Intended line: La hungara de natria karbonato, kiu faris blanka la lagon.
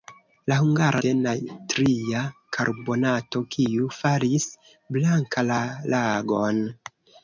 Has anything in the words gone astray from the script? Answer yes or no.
no